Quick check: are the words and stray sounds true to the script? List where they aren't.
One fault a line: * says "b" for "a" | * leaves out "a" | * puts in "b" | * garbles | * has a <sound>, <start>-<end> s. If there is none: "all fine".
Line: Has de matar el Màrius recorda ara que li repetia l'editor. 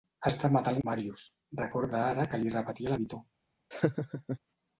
* has a laugh, 3.7-4.4 s